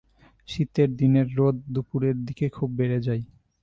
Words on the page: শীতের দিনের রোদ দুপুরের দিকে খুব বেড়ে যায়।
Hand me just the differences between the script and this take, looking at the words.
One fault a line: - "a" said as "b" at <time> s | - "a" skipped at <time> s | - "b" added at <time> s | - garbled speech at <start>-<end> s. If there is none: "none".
none